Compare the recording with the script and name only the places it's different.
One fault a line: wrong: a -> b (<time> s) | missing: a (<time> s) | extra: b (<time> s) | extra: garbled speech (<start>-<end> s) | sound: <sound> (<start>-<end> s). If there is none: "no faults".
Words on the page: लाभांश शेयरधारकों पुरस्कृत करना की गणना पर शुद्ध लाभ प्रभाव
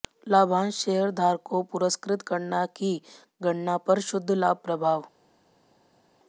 no faults